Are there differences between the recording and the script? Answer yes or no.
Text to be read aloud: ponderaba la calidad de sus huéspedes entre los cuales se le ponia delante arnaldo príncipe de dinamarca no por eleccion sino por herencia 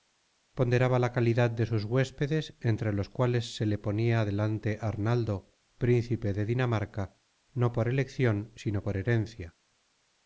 no